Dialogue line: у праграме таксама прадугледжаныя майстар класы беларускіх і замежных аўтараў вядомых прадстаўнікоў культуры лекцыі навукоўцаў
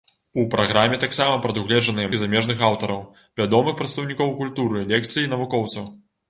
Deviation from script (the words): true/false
true